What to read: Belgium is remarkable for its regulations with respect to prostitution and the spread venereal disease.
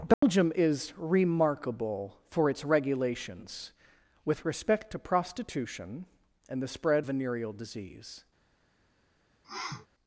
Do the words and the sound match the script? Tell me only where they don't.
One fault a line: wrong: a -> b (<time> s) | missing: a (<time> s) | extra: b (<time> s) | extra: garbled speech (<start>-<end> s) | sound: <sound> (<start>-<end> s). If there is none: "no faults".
sound: dropout (0.1-0.2 s)
sound: sniff (9.4-9.9 s)